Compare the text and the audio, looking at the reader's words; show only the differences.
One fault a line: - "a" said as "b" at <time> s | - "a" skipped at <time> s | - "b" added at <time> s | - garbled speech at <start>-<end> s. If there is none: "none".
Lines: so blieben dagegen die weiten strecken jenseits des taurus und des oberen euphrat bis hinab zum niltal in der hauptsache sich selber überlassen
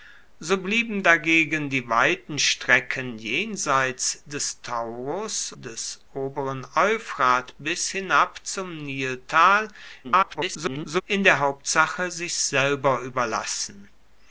- "und" skipped at 5.5 s
- garbled speech at 10.0-11.0 s